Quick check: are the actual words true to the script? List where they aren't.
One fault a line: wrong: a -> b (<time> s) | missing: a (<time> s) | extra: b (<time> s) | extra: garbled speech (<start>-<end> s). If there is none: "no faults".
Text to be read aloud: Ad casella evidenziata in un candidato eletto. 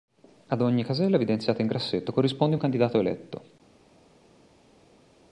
extra: ogni (0.6 s)
extra: grassetto corrisponde (1.7 s)